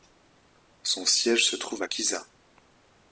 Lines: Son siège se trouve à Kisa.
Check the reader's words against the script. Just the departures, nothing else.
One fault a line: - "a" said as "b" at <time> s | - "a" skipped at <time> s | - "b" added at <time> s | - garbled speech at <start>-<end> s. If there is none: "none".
none